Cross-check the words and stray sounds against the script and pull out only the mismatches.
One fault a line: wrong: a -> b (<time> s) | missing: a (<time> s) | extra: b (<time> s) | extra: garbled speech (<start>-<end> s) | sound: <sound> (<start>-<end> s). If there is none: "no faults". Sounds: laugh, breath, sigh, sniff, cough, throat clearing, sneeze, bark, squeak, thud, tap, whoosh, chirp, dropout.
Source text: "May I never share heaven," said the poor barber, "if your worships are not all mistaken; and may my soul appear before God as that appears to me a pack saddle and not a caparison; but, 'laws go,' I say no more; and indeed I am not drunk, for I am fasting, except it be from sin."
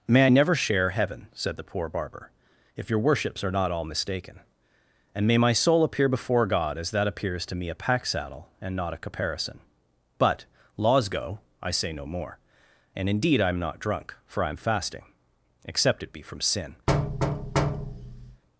sound: thud (16.9-18.4 s)